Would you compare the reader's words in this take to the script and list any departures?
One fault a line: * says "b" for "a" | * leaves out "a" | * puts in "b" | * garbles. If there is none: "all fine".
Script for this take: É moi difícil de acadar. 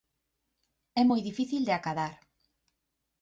all fine